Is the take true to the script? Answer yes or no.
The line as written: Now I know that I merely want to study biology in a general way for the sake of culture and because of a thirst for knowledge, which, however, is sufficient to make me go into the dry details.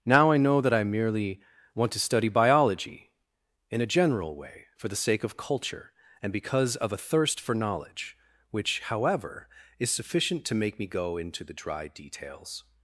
yes